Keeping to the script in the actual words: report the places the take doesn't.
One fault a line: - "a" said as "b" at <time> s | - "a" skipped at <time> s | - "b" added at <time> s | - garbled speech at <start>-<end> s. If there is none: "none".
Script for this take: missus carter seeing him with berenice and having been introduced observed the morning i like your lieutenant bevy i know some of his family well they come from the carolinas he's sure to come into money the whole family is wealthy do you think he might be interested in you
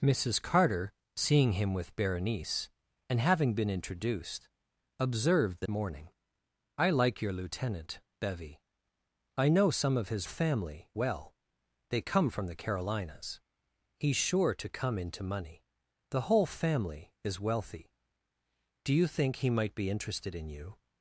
none